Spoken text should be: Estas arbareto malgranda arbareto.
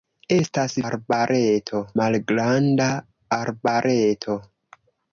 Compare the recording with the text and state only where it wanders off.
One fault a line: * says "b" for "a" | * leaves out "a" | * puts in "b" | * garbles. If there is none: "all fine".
all fine